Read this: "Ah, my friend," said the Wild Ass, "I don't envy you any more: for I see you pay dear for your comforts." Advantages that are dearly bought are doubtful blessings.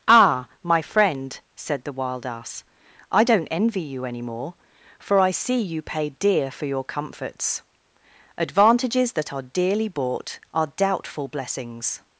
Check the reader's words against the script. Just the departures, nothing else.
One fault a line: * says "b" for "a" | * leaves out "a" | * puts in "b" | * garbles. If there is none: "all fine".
all fine